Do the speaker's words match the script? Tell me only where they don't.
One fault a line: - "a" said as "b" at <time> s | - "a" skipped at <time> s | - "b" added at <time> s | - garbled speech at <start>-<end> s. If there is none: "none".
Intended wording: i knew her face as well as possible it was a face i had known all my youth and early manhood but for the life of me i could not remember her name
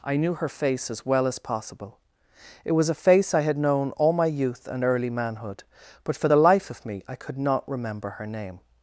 none